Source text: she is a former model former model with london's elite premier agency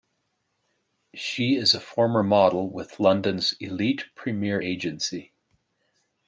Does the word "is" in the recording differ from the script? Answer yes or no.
no